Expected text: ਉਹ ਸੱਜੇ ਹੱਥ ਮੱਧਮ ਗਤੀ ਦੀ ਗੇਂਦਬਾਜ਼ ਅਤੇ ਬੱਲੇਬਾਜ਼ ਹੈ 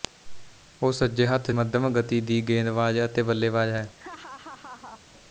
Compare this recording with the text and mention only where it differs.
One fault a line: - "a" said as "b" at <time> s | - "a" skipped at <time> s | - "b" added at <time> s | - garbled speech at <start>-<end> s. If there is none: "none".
none